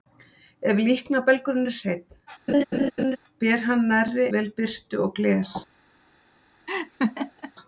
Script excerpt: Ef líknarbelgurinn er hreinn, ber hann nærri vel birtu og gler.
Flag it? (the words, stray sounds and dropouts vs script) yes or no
yes